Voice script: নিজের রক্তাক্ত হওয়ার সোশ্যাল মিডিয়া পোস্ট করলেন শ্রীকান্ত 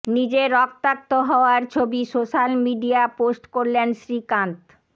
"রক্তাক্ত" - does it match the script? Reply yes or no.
yes